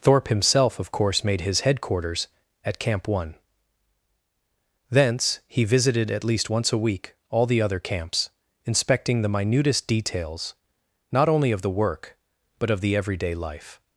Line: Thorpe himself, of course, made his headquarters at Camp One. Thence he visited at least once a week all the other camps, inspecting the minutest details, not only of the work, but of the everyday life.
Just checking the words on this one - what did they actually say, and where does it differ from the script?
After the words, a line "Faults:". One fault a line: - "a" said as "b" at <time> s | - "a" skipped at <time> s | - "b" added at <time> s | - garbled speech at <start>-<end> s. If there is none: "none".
Thorpe himself, of course, made his headquarters at Camp One. Thence he visited at least once a week all the other camps, inspecting the minutest details, not only of the work, but of the everyday life.
Faults:
none